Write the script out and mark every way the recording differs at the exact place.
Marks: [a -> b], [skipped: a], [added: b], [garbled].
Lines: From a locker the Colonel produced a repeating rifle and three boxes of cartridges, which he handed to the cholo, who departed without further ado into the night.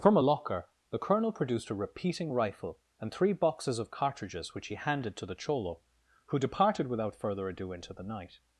From a locker the Colonel produced a repeating rifle and three boxes of cartridges, which he handed to the cholo, who departed without further ado into the night.